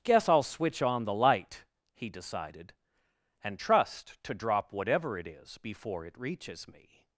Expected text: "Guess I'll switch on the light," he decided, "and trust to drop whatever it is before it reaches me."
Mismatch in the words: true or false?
false